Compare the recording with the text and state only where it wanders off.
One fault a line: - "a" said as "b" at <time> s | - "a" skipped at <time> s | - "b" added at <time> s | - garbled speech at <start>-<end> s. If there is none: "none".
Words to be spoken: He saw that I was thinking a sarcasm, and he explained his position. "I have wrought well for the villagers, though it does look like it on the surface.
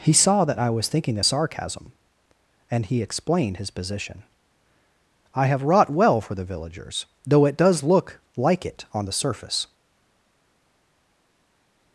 none